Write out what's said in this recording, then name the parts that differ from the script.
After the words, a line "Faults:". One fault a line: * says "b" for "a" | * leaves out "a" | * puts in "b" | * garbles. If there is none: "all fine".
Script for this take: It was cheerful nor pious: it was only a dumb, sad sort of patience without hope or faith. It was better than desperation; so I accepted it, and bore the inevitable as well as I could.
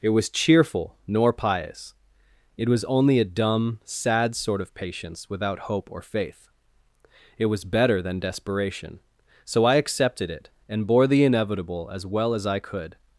It was cheerful nor pious: it was only a dumb, sad sort of patience without hope or faith. It was better than desperation; so I accepted it, and bore the inevitable as well as I could.
Faults:
all fine